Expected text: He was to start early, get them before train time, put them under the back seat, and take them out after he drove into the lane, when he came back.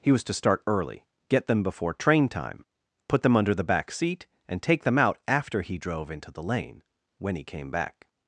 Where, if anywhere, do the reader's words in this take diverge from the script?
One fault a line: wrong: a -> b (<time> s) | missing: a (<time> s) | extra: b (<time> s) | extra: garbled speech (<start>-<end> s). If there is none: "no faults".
no faults